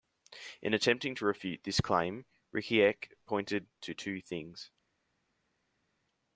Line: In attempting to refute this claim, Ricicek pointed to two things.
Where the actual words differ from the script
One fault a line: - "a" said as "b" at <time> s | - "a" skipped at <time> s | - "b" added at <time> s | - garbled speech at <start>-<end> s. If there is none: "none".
none